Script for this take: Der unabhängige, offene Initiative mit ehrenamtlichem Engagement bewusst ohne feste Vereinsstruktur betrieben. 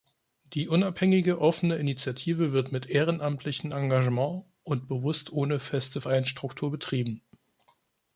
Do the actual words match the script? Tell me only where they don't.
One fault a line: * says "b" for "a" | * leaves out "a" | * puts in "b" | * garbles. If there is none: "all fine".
* says "Die" for "Der"
* puts in "wird"
* puts in "und"